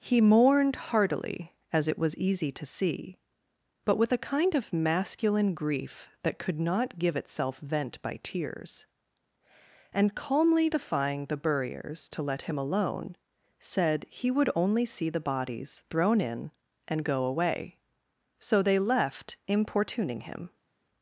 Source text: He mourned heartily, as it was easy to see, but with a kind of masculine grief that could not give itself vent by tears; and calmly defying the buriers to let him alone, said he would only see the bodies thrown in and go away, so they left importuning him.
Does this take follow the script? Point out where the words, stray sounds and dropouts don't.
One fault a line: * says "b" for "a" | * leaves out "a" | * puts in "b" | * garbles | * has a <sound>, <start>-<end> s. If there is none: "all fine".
all fine